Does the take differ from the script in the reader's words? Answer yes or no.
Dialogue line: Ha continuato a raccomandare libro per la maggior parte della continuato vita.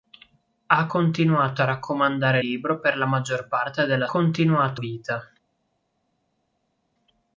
no